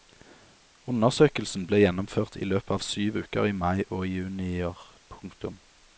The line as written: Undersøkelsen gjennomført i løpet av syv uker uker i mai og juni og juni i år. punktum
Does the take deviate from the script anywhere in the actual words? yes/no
yes